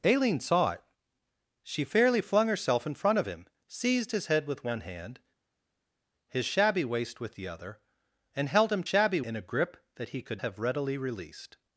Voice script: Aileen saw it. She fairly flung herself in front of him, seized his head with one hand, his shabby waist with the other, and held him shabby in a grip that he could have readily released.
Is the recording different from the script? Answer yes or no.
no